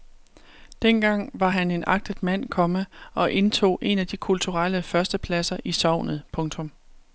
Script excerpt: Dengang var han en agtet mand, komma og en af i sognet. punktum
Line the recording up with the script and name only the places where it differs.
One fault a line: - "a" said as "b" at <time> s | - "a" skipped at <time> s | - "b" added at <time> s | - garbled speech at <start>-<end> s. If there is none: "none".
- "indtog" added at 3.3 s
- "de kulturelle førstepladser" added at 4.1 s